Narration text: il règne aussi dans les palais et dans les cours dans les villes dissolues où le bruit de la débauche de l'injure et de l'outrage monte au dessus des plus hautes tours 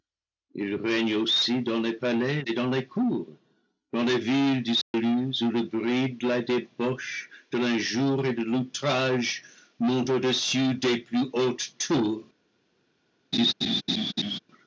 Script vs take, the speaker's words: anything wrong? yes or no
no